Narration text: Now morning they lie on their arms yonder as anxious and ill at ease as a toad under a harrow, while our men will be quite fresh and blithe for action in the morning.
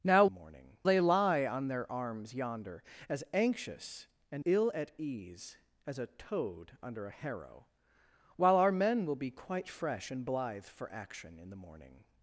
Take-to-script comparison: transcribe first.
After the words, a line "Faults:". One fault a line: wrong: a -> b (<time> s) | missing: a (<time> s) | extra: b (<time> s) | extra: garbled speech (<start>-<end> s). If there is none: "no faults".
Now morning they lie on their arms yonder as anxious and ill at ease as a toad under a harrow, while our men will be quite fresh and blithe for action in the morning.
Faults:
no faults